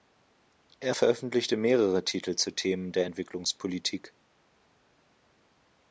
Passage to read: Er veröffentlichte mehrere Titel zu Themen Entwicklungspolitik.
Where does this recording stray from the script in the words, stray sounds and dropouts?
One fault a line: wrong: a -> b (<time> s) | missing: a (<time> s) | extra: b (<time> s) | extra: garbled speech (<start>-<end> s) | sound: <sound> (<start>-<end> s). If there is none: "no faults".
extra: der (2.9 s)